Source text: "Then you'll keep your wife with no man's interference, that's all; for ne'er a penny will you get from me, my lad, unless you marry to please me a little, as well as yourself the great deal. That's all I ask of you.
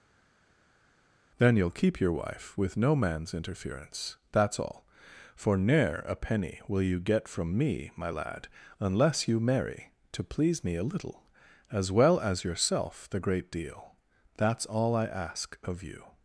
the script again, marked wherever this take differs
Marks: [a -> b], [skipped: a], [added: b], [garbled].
"Then you'll keep your wife with no man's interference, that's all; for ne'er a penny will you get from me, my lad, unless you marry to please me a little, as well as yourself the great deal. That's all I ask of you.